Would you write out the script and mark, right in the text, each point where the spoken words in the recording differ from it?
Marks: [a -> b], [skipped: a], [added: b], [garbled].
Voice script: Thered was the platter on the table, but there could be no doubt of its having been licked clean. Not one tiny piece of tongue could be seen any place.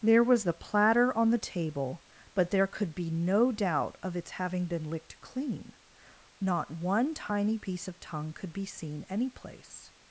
[Thered -> There] was the platter on the table, but there could be no doubt of its having been licked clean. Not one tiny piece of tongue could be seen any place.